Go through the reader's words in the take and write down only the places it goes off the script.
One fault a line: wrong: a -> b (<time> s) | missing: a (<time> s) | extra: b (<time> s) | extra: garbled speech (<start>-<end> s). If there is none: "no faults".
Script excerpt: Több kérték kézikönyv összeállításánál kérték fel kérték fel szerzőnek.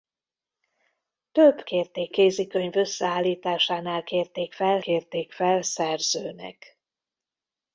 no faults